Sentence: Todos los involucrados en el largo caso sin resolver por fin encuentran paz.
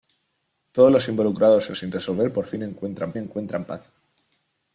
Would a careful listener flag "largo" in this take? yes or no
yes